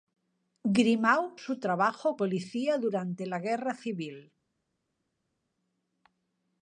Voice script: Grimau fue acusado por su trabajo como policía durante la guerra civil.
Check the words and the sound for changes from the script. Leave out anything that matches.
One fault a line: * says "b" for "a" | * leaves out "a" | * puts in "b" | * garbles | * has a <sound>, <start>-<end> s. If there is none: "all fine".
* leaves out "fue acusado por"
* leaves out "como"